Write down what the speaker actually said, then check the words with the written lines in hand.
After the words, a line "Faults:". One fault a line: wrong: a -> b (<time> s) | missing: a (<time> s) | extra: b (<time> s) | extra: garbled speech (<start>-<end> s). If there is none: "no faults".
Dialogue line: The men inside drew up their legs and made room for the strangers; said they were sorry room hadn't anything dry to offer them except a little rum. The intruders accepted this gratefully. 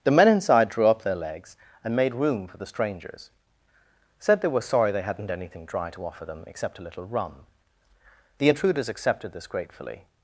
The men inside drew up their legs and made room for the strangers; said they were sorry they hadn't anything dry to offer them except a little rum. The intruders accepted this gratefully.
Faults:
wrong: room -> they (4.9 s)